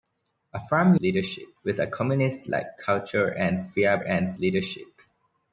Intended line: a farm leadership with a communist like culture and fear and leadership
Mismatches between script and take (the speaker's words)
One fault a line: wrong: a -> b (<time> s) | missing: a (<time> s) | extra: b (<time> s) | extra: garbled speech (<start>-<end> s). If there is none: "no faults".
no faults